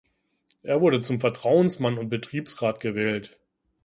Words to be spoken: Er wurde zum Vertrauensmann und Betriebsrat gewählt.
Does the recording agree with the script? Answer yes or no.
yes